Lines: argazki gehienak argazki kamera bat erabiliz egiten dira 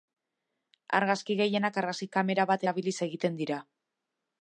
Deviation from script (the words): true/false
false